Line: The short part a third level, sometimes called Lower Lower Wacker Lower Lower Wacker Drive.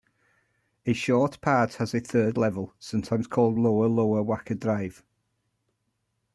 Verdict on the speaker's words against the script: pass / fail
fail